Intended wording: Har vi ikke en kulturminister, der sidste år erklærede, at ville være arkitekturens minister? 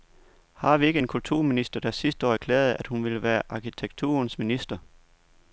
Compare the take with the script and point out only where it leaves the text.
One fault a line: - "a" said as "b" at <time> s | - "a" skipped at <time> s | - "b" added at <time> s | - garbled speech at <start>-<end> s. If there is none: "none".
- "hun" added at 2.9 s